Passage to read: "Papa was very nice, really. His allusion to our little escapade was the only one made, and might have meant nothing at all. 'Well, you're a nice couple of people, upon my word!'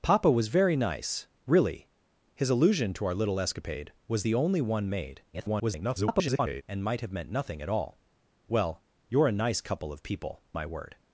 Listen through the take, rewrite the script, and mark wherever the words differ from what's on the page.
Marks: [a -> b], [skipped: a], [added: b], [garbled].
"Papa was very nice, really. His allusion to our little escapade was the only one made, [garbled] and might have meant nothing at all. 'Well, you're a nice couple of people, [skipped: upon] my word!'